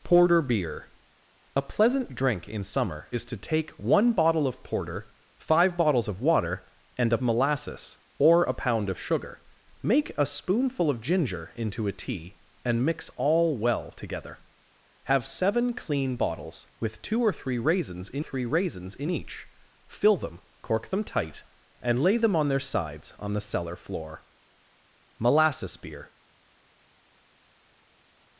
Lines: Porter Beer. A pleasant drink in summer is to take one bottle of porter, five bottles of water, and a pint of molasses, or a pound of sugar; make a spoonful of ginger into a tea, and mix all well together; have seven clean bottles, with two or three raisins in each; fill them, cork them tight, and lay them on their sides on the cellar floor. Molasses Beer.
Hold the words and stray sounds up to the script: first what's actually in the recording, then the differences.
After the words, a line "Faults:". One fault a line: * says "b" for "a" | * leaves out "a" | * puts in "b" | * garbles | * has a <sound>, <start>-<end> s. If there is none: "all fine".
Porter Beer. A pleasant drink in summer is to take one bottle of porter, five bottles of water, and a molasses, or a pound of sugar; make a spoonful of ginger into a tea, and mix all well together; have seven clean bottles, with two or three raisins in three raisins in each; fill them, cork them tight, and lay them on their sides on the cellar floor. Molasses Beer.
Faults:
* leaves out "pint of"
* puts in "three raisins in"